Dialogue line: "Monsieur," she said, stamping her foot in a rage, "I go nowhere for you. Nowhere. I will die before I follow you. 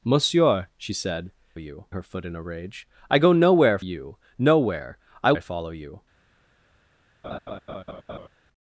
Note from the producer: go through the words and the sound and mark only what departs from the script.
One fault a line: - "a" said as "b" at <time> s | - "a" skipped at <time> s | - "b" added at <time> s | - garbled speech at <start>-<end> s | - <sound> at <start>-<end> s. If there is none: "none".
- "stamping" said as "you" at 1.5 s
- "for" skipped at 3.8 s
- "will die before" skipped at 5.3 s
- laugh at 7.2-8.3 s